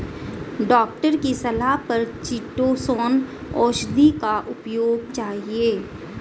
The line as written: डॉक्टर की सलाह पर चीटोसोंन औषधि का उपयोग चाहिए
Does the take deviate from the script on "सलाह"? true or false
false